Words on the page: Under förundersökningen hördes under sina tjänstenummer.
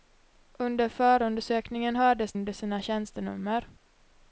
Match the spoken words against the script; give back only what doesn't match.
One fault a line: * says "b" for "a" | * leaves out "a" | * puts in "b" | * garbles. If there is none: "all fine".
all fine